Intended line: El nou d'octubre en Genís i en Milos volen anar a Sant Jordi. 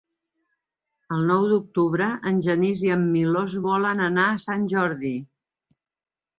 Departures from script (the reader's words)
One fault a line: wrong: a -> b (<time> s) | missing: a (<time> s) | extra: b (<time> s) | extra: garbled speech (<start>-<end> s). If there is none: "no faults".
no faults